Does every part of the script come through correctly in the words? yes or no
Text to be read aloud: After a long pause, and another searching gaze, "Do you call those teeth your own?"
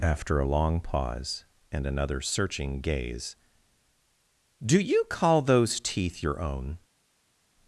yes